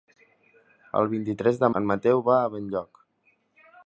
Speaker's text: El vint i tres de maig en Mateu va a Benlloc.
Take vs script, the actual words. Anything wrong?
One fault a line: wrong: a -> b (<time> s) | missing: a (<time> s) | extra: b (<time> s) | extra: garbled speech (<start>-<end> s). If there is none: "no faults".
missing: maig (1.7 s)